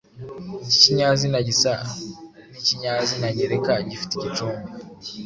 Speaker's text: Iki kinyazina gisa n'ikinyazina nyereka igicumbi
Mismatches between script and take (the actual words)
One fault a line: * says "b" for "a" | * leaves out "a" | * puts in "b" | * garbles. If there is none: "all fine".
* puts in "gifite"